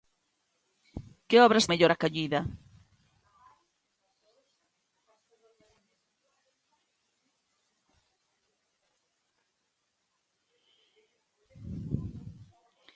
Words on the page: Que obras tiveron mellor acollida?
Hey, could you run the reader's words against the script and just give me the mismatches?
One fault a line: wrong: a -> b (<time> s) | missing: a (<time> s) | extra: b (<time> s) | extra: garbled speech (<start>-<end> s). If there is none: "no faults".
missing: tiveron (1.7 s)